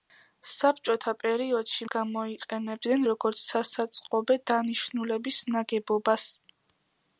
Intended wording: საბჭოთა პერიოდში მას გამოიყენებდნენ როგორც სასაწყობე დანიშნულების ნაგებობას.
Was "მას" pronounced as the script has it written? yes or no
no